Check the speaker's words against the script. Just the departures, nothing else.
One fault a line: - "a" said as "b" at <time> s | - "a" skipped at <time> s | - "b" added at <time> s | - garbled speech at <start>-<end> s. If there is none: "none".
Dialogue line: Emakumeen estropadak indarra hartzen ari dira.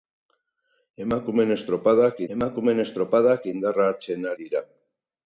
- "emakumeen estropadak" added at 2.4 s
- "ari" skipped at 4.3 s